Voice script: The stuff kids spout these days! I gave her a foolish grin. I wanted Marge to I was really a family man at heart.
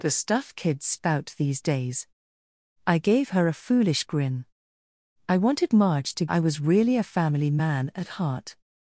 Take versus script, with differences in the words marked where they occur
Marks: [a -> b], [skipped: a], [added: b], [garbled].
The stuff kids spout these days! I gave her a foolish grin. I wanted Marge to I was really a family man at heart.